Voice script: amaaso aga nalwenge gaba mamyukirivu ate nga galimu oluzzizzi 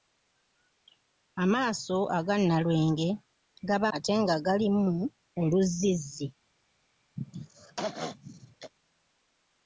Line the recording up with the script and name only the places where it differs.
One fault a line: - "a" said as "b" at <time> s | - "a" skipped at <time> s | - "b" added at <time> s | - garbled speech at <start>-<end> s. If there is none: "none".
- "mamyukirivu" skipped at 3.9 s